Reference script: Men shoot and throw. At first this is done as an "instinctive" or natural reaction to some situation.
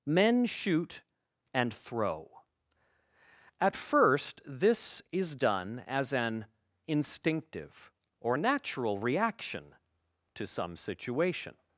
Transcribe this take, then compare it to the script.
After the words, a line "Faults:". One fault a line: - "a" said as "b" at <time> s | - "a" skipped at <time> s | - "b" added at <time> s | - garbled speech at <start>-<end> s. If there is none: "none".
Men shoot and throw. At first this is done as an "instinctive" or natural reaction to some situation.
Faults:
none